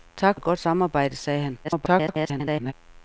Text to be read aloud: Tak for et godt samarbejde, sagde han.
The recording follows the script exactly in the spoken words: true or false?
false